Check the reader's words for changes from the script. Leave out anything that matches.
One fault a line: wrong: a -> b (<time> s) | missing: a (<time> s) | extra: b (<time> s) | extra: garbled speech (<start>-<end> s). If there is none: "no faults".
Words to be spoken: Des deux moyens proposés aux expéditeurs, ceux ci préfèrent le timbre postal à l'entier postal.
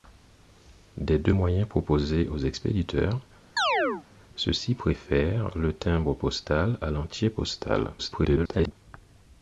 extra: garbled speech (8.0-8.7 s)